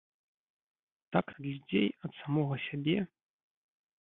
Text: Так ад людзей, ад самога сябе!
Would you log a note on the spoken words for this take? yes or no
no